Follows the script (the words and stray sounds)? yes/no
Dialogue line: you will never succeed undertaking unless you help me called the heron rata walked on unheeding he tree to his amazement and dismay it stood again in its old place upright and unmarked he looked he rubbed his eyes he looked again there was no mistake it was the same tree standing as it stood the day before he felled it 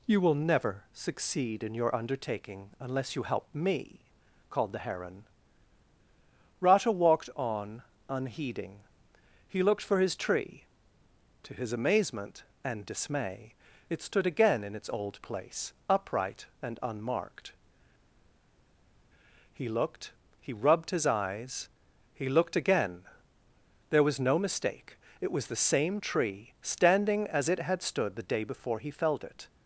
no